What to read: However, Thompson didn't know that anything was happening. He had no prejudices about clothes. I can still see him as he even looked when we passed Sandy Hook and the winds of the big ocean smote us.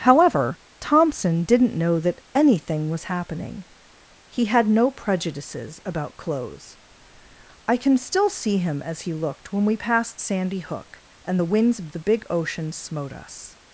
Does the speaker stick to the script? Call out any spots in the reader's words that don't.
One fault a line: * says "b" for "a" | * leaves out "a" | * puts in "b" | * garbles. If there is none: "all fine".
* leaves out "even"